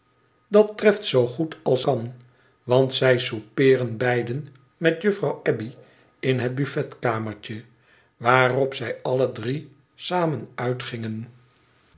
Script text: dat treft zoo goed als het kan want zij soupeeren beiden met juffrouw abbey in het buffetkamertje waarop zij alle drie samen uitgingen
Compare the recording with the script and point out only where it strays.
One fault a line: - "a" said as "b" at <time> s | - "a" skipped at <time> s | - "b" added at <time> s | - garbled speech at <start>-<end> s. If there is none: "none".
- "het" skipped at 1.8 s